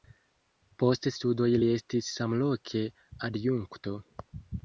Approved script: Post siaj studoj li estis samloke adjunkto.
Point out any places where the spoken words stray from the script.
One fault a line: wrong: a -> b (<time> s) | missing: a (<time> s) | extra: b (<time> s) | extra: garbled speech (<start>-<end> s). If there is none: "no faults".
missing: siaj (1.1 s)